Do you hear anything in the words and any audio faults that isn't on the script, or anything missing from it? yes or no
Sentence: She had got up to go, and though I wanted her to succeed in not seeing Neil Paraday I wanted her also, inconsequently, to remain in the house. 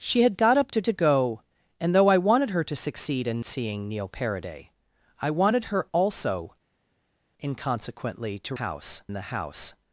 yes